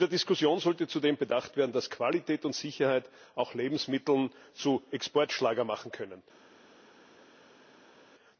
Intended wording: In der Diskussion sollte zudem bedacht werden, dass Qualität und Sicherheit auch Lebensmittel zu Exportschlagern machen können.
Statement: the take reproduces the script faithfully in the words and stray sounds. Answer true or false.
true